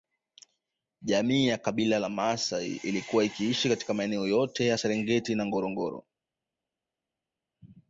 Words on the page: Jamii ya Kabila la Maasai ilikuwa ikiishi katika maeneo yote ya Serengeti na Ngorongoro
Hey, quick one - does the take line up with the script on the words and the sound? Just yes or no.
yes